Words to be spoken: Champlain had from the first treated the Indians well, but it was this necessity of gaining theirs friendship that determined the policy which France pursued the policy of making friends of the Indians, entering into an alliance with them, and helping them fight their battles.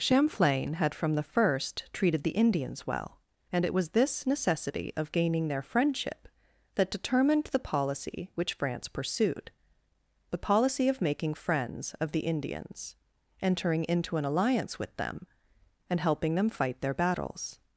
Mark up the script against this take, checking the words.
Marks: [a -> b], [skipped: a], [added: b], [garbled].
Champlain had from the first treated the Indians well, [but -> and] it was this necessity of gaining [theirs -> their] friendship that determined the policy which France pursued the policy of making friends of the Indians, entering into an alliance with them, and helping them fight their battles.